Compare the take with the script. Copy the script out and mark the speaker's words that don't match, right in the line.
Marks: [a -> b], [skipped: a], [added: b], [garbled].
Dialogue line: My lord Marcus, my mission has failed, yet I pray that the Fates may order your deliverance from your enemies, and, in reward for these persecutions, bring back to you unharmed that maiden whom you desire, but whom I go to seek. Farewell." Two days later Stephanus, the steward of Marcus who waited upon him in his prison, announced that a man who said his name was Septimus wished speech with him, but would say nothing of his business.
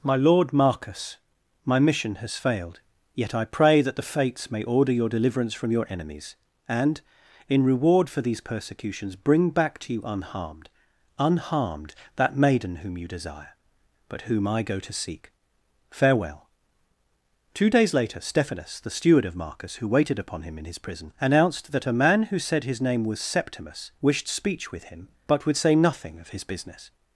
My lord Marcus, my mission has failed, yet I pray that the Fates may order your deliverance from your enemies, and, in reward for these persecutions, bring back to you unharmed [added: unharmed] that maiden whom you desire, but whom I go to seek. Farewell." Two days later Stephanus, the steward of Marcus who waited upon him in his prison, announced that a man who said his name was Septimus wished speech with him, but would say nothing of his business.